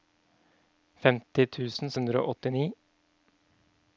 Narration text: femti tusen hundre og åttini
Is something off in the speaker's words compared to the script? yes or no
no